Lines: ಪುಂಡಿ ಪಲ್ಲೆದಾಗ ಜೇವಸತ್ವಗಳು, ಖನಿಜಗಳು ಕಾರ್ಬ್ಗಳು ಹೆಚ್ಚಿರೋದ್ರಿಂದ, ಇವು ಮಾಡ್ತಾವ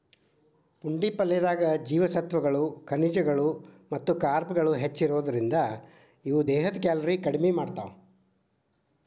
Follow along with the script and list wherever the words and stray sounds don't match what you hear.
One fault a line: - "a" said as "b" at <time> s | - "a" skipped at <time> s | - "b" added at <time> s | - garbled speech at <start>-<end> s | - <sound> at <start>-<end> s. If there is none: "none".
- "ಮತ್ತ" added at 3.9 s
- "ದೇಹದ ಕ್ಯಾಲೋರಿ ಕಡಿಮಿ" added at 6.5 s